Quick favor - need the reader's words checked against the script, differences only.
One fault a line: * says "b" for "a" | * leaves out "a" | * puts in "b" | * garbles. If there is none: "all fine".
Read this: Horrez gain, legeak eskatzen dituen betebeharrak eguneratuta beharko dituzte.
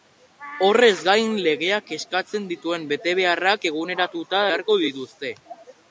all fine